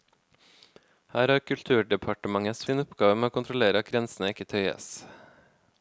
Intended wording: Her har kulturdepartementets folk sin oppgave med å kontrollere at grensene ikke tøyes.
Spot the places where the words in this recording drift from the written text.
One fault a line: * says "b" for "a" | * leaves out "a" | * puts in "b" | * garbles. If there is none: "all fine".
* leaves out "folk"